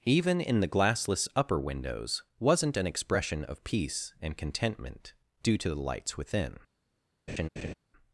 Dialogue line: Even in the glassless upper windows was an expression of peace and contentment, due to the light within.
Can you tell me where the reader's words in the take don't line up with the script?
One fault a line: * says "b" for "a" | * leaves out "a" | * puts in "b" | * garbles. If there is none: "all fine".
* says "wasn't" for "was"
* says "lights" for "light"